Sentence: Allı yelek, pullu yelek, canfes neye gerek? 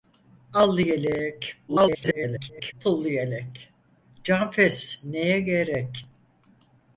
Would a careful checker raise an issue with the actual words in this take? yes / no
yes